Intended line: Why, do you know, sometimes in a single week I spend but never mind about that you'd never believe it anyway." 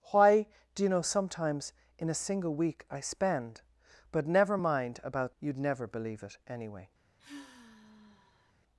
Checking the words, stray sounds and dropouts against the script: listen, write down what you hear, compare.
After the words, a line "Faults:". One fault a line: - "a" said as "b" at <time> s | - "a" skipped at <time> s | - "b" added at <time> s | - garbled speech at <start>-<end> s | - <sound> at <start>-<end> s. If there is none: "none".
Why, do you know, sometimes in a single week I spend but never mind about you'd never believe it anyway."
Faults:
- "that" skipped at 5.4 s
- sigh at 7.2-8.5 s